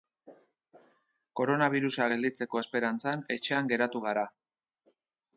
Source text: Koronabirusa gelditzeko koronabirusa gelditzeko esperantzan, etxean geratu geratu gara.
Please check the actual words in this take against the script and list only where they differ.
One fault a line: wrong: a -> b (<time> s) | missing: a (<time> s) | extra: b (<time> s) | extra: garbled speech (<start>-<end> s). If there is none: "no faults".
missing: koronabirusa gelditzeko (2.6 s)
missing: geratu (4.0 s)